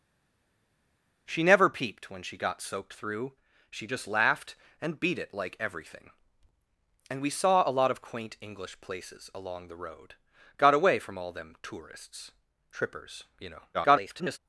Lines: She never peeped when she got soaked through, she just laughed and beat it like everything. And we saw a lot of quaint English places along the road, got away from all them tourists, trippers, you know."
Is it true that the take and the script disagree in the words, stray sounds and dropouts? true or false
true